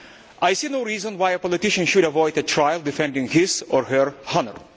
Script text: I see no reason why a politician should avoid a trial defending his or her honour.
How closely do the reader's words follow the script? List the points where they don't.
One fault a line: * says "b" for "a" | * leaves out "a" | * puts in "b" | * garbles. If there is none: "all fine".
all fine